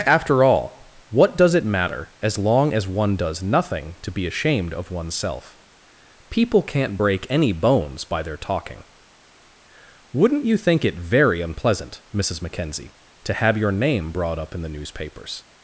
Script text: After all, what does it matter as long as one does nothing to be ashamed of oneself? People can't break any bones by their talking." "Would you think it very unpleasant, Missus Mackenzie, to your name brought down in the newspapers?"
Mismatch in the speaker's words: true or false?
true